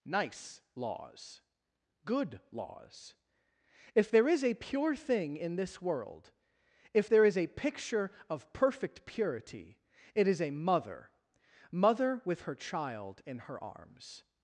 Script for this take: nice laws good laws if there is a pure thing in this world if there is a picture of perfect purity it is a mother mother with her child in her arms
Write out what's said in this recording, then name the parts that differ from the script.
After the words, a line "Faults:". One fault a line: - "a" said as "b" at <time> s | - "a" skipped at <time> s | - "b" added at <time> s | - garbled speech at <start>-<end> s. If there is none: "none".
nice laws good laws if there is a pure thing in this world if there is a picture of perfect purity it is a mother mother with her child in her arms
Faults:
none